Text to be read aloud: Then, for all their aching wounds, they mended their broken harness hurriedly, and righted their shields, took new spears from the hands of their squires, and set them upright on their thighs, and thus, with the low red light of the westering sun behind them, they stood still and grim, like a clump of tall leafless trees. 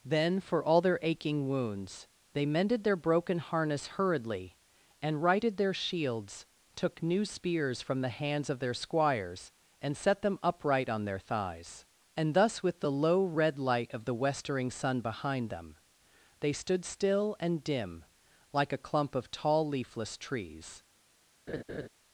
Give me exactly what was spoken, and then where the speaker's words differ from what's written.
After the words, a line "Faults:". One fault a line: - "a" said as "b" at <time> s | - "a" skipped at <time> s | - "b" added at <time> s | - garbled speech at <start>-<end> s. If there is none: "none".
Then, for all their aching wounds, they mended their broken harness hurriedly, and righted their shields, took new spears from the hands of their squires, and set them upright on their thighs, and thus, with the low red light of the westering sun behind them, they stood still and dim, like a clump of tall leafless trees.
Faults:
- "grim" said as "dim" at 17.6 s